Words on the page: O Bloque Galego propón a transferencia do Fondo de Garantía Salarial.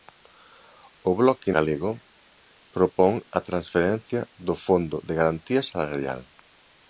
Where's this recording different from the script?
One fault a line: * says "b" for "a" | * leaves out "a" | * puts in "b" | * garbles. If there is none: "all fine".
all fine